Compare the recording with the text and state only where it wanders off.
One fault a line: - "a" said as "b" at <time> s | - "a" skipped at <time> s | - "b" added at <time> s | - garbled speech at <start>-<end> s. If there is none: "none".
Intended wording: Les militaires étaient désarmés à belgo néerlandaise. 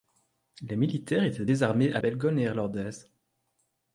none